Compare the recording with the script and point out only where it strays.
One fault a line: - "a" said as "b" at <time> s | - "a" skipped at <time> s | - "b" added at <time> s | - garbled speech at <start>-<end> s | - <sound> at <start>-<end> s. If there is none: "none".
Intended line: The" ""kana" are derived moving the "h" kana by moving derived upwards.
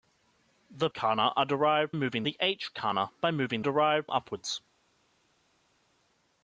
none